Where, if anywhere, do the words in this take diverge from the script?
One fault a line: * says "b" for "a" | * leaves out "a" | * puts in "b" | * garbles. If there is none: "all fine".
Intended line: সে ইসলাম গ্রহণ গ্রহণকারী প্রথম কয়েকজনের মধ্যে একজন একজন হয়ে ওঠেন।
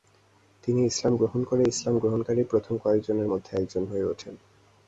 * says "তিনি" for "সে"
* puts in "করে ইসলাম"
* leaves out "একজন"